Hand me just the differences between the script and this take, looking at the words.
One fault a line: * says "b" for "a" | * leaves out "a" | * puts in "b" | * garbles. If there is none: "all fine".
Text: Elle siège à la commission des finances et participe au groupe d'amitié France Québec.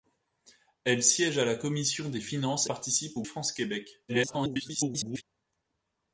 * leaves out "et"
* leaves out "groupe d'amitié"
* garbles